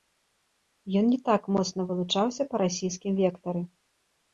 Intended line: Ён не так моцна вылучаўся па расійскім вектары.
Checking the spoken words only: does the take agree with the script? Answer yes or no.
yes